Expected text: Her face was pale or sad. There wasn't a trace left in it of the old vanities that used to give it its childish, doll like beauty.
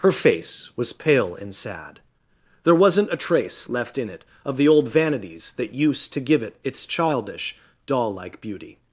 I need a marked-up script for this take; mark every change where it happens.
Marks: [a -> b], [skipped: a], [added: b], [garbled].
Her face was pale [or -> and] sad. There wasn't a trace left in it of the old vanities that used to give it its childish, doll like beauty.